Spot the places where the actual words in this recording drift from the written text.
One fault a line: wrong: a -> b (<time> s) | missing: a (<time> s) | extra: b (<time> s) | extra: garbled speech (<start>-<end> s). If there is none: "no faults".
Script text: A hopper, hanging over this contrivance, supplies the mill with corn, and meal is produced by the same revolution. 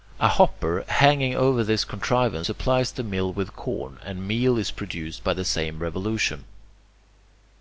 no faults